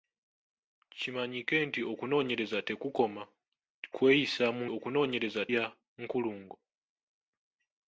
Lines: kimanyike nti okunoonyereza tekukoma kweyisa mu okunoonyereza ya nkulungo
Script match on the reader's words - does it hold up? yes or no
yes